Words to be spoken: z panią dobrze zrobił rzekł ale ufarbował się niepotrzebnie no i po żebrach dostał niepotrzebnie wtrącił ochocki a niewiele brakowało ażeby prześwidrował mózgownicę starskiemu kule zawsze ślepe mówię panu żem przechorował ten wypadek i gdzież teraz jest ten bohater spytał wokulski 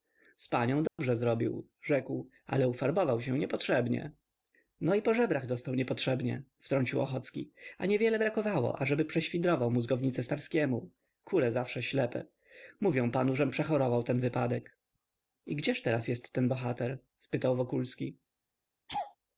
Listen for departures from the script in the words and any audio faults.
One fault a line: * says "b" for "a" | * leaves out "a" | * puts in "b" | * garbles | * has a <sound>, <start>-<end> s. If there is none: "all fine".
* has a dropout, 0.9-1.0 s
* has a laugh, 18.9-19.2 s